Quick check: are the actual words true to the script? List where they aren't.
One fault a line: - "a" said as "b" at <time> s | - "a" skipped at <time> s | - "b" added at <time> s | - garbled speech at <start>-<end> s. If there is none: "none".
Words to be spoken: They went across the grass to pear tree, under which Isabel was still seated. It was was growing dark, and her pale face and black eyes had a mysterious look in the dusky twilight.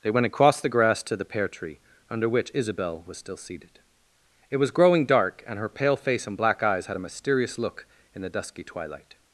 - "the" added at 1.1 s
- "was" skipped at 4.7 s